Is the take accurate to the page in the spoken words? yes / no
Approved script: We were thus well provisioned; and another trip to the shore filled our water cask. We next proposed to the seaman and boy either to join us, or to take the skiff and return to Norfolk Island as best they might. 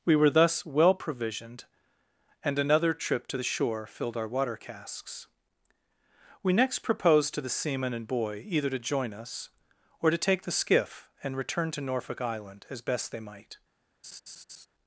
no